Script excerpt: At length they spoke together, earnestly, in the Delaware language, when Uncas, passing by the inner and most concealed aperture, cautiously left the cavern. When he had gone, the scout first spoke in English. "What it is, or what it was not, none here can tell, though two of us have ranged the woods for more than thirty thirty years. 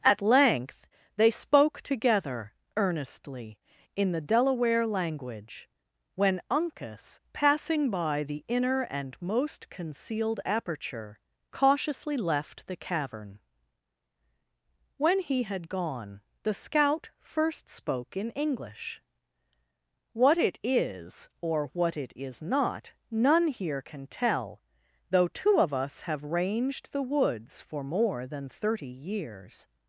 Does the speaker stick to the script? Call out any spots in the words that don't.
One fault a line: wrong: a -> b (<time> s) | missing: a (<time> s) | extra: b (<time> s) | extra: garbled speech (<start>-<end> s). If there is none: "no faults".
wrong: was -> is (22.2 s)
missing: thirty (28.9 s)